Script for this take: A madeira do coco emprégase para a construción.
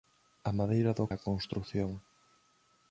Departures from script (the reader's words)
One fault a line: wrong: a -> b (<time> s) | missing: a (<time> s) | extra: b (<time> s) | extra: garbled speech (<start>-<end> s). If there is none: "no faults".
missing: coco emprégase para (1.1 s)